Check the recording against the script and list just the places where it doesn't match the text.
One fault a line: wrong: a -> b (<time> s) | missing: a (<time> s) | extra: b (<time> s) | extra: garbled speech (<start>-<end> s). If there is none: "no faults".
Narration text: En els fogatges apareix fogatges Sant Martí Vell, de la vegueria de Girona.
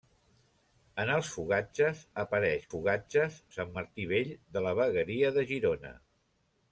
no faults